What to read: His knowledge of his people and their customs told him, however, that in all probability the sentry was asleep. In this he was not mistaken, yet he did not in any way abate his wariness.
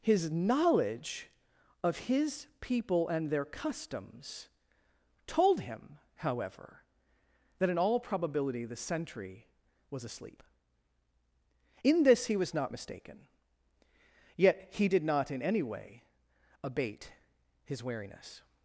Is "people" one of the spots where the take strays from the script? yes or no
no